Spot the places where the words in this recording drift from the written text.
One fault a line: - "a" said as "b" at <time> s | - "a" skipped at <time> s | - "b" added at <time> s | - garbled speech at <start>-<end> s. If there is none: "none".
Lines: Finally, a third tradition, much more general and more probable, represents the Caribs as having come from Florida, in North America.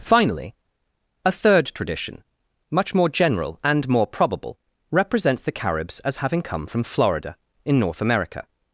none